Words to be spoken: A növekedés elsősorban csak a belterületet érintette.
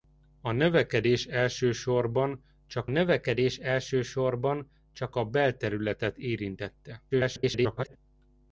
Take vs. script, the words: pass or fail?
fail